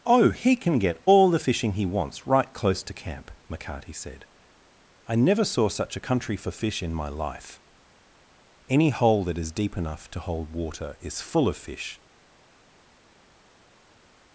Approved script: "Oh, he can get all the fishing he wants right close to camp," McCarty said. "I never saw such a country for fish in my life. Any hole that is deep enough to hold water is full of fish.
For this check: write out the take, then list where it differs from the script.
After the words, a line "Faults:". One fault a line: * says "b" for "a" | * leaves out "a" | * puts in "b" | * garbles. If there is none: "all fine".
"Oh, he can get all the fishing he wants right close to camp," McCarty said. "I never saw such a country for fish in my life. Any hole that is deep enough to hold water is full of fish.
Faults:
all fine